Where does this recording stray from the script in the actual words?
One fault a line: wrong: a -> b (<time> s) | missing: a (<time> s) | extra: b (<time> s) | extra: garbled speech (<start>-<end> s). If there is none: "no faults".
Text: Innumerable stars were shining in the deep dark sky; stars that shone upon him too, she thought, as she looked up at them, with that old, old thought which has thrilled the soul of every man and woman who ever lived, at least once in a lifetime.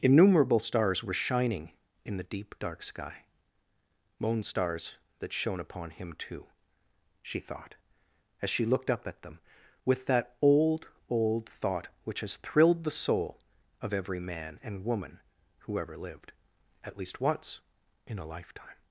extra: moon (4.2 s)